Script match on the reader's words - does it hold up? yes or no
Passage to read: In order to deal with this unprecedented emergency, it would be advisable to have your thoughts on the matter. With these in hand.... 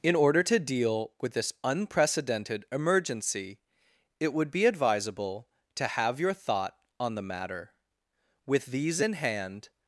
no